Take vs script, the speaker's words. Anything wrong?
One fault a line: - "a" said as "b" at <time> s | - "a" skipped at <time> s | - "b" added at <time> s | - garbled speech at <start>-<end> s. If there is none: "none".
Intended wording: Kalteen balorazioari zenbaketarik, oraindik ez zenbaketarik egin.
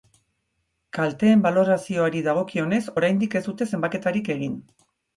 - "zenbaketarik" said as "dagokionez" at 2.3 s
- "dute" added at 3.5 s